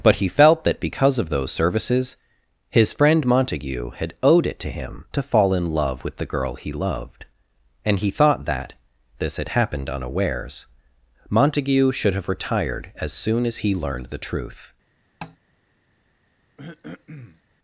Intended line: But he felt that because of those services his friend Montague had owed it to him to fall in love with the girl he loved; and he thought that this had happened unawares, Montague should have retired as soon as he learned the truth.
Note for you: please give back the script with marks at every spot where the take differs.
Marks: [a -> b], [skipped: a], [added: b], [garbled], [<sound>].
But he felt that because of those services his friend Montague had owed it to him to fall in love with the girl he loved; and he thought that this had happened unawares, Montague should have retired as soon as he learned the truth. [tap] [throat clearing]